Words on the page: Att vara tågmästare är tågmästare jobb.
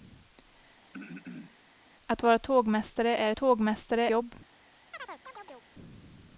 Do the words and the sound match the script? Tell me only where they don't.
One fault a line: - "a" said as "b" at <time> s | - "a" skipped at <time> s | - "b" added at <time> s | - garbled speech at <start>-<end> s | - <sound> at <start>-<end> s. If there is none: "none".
- throat clearing at 0.9-1.6 s
- chirp at 4.9-5.7 s